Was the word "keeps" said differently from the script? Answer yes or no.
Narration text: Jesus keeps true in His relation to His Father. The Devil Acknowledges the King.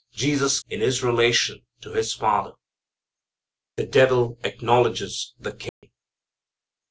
yes